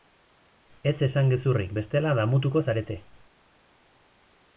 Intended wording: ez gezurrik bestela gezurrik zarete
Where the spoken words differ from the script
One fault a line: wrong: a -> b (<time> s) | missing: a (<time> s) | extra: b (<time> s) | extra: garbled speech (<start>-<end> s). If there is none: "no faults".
extra: esan (1.1 s)
wrong: gezurrik -> damutuko (2.2 s)